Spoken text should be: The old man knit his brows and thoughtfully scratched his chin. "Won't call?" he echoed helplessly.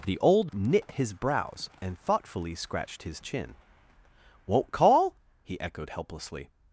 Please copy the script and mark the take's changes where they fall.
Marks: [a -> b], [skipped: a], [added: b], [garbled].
The old [skipped: man] knit his brows and thoughtfully scratched his chin. "Won't call?" he echoed helplessly.